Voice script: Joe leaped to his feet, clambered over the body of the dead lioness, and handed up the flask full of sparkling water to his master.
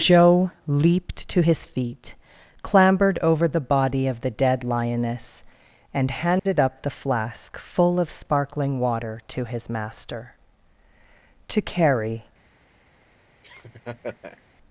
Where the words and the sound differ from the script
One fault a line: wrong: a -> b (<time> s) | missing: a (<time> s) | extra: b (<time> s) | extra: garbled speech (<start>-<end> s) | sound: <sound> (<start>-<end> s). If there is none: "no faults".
sound: dropout (6.4-6.5 s)
extra: To carry (11.5 s)
sound: laugh (13.4-14.4 s)